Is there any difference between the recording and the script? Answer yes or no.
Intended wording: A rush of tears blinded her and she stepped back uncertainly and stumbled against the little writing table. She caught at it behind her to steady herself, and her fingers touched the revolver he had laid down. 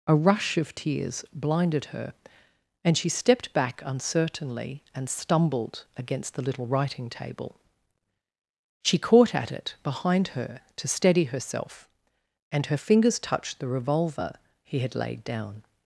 no